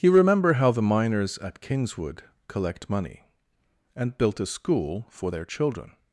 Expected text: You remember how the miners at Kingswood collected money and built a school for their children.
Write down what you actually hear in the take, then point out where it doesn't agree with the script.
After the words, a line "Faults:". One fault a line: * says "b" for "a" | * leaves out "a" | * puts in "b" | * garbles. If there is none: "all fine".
You remember how the miners at Kingswood collect money and built a school for their children.
Faults:
* says "collect" for "collected"